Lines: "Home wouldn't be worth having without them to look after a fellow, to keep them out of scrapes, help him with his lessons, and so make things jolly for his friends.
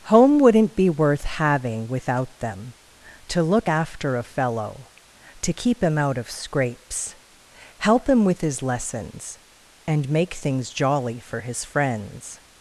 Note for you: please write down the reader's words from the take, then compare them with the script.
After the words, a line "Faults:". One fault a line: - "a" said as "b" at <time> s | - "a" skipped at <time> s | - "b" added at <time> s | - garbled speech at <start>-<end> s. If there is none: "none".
"Home wouldn't be worth having without them to look after a fellow, to keep him out of scrapes, help him with his lessons, and make things jolly for his friends.
Faults:
- "them" said as "him" at 5.8 s
- "so" skipped at 10.1 s